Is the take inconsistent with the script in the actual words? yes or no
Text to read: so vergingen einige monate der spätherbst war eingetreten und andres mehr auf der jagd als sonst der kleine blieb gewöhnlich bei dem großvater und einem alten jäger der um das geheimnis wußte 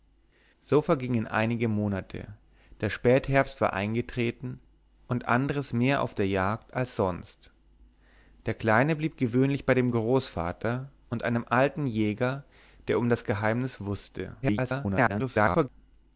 yes